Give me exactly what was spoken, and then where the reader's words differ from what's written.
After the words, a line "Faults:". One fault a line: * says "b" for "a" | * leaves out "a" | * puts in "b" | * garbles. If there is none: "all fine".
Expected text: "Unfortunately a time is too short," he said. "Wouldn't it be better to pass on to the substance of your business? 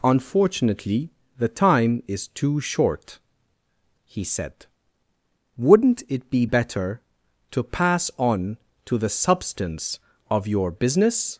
"Unfortunately the time is too short," he said. "Wouldn't it be better to pass on to the substance of your business?
Faults:
* says "the" for "a"